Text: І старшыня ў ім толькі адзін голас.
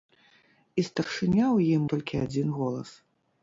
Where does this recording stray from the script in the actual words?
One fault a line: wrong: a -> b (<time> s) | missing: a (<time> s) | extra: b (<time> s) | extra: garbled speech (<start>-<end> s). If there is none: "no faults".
no faults